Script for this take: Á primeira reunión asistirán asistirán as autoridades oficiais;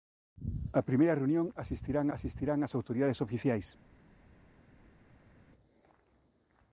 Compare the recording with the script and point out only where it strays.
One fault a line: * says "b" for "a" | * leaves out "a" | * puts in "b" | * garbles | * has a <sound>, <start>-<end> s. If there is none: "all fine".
all fine